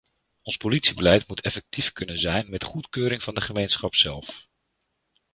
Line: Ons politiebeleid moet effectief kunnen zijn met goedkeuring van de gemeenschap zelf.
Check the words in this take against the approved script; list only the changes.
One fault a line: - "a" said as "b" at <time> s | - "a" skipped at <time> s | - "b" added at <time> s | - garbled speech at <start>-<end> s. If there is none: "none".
none